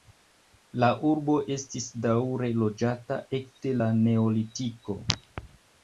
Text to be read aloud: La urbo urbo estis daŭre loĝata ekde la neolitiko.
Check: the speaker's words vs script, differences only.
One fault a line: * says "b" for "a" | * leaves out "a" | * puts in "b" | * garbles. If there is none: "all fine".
* leaves out "urbo"